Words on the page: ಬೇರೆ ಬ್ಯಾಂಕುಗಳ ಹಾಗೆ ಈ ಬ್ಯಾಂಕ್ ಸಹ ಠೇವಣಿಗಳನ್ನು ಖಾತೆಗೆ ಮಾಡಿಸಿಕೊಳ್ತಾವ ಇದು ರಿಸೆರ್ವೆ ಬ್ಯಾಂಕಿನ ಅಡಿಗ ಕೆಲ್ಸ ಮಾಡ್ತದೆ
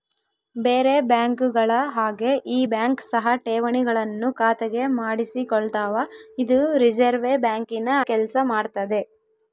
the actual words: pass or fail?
fail